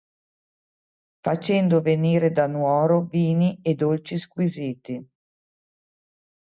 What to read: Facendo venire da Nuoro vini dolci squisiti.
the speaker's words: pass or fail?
fail